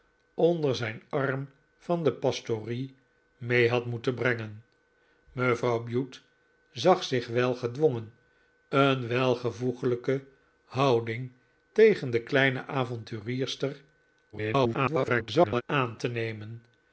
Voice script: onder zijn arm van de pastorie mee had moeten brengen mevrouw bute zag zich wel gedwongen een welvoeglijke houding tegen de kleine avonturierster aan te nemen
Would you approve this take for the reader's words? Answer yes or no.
no